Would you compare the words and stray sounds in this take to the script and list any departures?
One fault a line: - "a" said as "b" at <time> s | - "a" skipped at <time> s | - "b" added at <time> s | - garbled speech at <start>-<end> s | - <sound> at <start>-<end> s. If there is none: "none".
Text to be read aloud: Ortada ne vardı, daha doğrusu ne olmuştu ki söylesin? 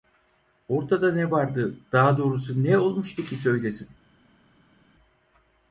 none